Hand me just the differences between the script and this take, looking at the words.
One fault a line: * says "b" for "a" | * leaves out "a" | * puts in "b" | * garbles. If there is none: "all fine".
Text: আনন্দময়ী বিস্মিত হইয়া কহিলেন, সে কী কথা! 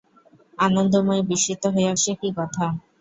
* leaves out "কহিলেন"